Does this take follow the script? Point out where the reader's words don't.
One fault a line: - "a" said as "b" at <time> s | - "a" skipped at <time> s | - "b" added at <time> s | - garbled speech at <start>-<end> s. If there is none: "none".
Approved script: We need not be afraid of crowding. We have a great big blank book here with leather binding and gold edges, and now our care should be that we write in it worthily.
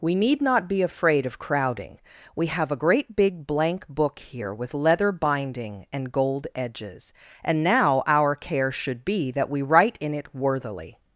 none